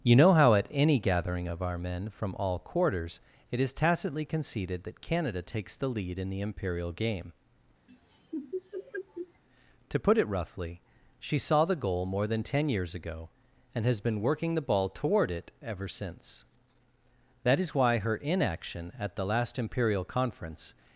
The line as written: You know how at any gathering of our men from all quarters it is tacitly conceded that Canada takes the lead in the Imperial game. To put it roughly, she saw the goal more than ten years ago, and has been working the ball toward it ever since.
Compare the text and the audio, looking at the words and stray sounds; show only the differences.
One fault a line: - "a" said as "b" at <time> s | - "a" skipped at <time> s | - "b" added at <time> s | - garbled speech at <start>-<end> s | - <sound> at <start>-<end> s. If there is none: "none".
- laugh at 7.9-9.4 s
- "That is why her inaction at the last Imperial Conference" added at 17.4 s